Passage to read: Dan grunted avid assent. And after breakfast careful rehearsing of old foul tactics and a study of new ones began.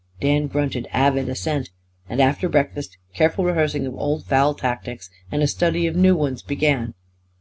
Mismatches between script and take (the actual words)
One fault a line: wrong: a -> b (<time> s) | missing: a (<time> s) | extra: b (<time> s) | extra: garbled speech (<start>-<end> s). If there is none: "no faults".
no faults